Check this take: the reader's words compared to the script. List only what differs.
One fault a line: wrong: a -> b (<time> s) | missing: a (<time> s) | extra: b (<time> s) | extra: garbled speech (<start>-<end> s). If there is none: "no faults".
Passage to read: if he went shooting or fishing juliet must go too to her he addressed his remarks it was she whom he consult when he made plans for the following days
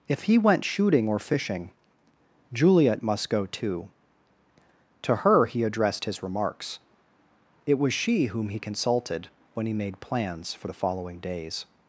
wrong: consult -> consulted (8.6 s)